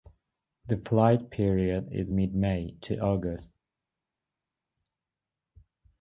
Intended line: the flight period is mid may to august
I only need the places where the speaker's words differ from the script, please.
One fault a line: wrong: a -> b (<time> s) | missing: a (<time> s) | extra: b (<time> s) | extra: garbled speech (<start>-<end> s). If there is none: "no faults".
no faults